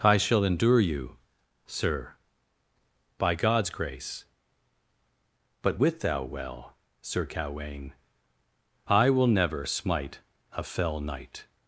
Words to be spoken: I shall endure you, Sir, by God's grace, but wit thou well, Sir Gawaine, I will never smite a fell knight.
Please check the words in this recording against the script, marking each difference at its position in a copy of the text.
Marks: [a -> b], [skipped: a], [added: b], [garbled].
I shall endure you, Sir, by God's grace, but wit thou well, Sir Gawaine, I will never smite a fell knight.